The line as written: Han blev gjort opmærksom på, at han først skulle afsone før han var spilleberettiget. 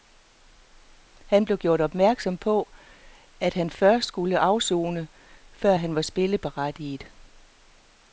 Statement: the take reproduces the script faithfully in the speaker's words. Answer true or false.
true